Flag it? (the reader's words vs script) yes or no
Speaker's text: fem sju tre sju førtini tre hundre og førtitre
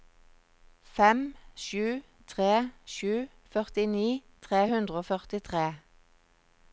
no